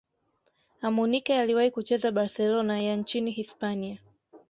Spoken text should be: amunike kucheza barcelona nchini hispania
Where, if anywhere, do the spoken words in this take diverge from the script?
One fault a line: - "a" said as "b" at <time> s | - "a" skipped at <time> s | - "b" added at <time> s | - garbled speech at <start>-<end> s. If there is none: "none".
- "aliwahi" added at 1.4 s
- "ya" added at 2.8 s